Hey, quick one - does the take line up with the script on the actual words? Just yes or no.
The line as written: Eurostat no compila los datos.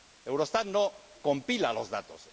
yes